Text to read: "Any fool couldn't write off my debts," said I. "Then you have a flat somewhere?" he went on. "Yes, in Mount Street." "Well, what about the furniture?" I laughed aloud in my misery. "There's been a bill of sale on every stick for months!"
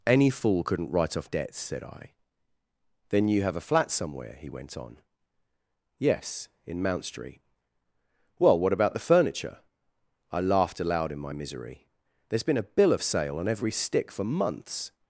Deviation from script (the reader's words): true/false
true